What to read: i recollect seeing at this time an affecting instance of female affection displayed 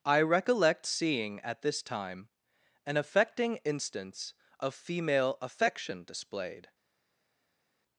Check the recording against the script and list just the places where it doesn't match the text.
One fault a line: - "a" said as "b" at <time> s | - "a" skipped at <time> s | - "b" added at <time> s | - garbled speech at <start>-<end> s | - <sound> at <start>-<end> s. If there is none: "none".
none